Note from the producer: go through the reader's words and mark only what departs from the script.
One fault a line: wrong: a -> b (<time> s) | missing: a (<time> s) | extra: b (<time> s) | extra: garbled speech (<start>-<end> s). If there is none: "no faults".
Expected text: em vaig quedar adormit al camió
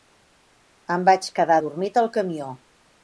no faults